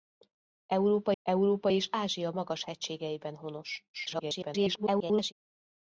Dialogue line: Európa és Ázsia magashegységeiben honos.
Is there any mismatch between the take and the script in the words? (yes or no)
yes